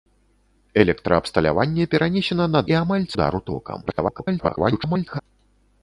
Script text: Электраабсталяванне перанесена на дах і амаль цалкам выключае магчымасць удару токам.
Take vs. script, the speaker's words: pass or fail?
fail